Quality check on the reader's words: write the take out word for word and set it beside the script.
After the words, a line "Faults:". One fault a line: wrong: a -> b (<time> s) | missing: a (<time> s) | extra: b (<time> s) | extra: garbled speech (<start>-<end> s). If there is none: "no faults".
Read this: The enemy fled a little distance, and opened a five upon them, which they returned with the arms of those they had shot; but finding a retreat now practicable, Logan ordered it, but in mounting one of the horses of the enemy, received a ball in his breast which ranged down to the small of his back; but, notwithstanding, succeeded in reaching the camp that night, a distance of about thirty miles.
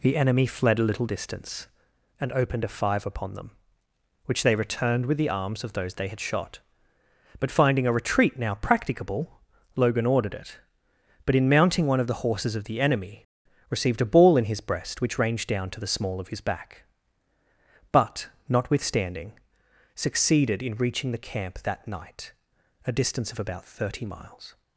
The enemy fled a little distance, and opened a five upon them, which they returned with the arms of those they had shot; but finding a retreat now practicable, Logan ordered it, but in mounting one of the horses of the enemy, received a ball in his breast which ranged down to the small of his back; but, notwithstanding, succeeded in reaching the camp that night, a distance of about thirty miles.
Faults:
no faults